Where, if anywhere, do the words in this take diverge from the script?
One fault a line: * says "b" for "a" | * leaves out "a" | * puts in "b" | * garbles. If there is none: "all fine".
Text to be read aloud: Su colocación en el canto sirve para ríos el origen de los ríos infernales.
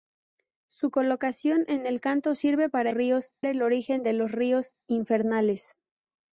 all fine